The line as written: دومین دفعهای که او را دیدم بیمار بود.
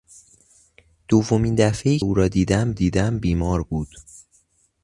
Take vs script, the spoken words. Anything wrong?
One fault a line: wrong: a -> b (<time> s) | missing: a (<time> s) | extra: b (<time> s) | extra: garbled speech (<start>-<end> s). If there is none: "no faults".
missing: که (2.0 s)
extra: دیدم (2.7 s)